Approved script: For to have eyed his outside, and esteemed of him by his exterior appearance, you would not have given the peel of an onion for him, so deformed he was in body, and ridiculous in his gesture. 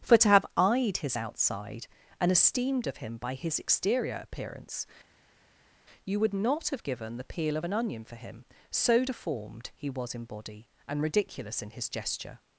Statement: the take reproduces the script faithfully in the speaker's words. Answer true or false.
true